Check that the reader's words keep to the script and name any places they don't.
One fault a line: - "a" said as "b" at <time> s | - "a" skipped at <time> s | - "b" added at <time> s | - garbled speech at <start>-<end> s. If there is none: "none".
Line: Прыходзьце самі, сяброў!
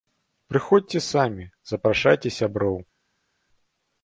- "запрашайце" added at 1.7 s